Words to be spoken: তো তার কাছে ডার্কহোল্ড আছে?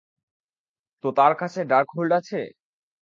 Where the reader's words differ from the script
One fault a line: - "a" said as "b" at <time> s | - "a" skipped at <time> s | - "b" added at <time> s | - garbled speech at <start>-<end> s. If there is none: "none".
none